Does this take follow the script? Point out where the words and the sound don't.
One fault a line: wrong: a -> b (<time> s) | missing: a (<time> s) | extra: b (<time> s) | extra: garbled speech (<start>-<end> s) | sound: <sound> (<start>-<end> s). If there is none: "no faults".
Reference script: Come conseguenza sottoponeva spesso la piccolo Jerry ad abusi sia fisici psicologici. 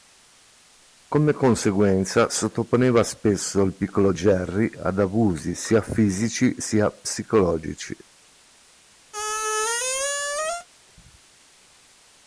wrong: la -> il (3.6 s)
extra: sia (6.6 s)
sound: squeak (9.1-10.7 s)